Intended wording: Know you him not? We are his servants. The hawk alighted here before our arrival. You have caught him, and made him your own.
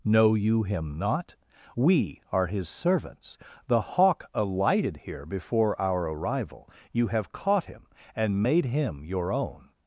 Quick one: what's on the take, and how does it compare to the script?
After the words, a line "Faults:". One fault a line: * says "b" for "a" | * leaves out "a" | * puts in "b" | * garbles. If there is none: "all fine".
Know you him not? We are his servants. The hawk alighted here before our arrival. You have caught him, and made him your own.
Faults:
all fine